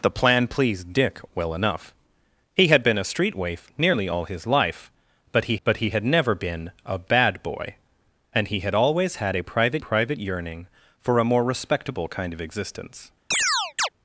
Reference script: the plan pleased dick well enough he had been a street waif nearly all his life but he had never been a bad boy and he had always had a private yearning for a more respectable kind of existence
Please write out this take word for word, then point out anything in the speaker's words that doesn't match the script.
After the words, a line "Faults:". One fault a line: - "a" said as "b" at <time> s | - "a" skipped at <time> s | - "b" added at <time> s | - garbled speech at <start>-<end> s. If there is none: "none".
the plan pleased dick well enough he had been a street waif nearly all his life but he but he had never been a bad boy and he had always had a private private yearning for a more respectable kind of existence
Faults:
- "but he" added at 5.6 s
- "private" added at 9.8 s